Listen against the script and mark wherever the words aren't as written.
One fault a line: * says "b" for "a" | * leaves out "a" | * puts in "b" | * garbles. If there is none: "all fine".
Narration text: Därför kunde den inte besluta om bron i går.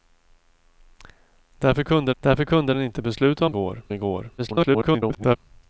* puts in "därför kunde"
* says "går" for "bron"
* garbles